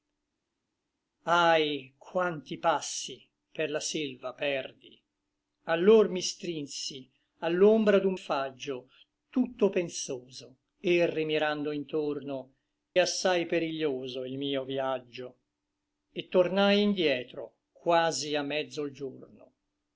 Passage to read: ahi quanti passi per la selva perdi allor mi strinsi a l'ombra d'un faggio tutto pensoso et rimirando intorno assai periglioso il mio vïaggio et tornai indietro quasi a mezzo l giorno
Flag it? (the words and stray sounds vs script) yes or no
no